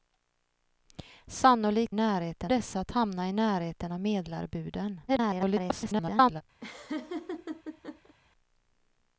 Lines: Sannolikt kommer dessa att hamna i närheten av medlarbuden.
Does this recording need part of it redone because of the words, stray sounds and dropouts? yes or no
yes